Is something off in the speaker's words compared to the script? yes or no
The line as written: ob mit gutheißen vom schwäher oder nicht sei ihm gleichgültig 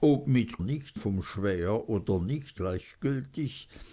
yes